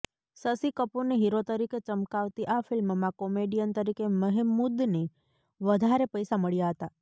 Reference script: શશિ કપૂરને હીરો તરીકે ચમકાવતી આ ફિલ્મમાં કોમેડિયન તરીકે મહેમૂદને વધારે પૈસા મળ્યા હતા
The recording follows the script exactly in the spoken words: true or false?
true